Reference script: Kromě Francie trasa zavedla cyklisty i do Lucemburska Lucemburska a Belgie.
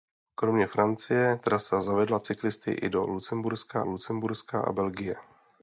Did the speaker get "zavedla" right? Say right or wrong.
right